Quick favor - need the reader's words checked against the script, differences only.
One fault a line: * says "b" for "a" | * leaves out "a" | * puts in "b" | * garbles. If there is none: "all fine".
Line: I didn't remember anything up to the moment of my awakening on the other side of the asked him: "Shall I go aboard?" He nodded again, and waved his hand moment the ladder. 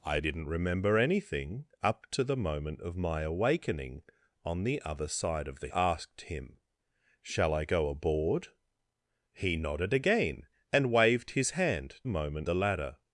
all fine